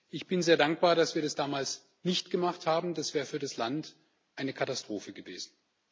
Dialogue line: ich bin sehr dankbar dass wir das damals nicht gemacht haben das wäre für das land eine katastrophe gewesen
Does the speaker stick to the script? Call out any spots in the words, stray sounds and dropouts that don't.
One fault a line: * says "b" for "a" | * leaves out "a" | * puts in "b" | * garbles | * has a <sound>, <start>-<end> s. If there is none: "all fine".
all fine